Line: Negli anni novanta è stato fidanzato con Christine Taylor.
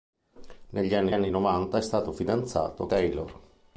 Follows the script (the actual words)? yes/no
no